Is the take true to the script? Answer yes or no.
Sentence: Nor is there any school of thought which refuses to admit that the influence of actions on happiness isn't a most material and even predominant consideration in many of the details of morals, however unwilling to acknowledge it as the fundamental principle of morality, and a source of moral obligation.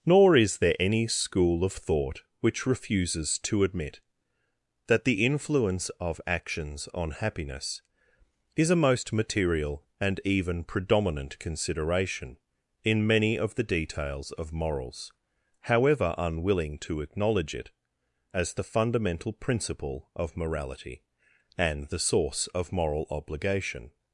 no